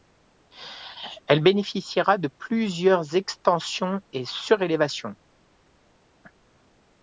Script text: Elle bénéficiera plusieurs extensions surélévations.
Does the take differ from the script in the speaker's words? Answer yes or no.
yes